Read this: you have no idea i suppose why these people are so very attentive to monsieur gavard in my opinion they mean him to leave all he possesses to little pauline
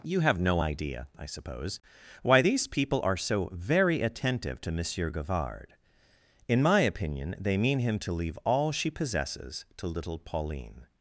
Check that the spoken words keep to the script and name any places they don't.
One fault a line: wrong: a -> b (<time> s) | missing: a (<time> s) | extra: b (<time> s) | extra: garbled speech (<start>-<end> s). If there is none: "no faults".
wrong: he -> she (8.7 s)